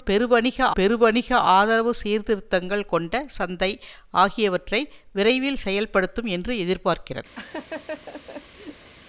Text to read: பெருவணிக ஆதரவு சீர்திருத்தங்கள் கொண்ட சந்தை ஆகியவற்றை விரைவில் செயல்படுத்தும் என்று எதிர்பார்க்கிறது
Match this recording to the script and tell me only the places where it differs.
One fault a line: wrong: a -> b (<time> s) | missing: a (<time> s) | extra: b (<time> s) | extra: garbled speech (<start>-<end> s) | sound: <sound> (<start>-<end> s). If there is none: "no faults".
extra: பெருவணிக (0.7 s)
sound: laugh (7.4-8.9 s)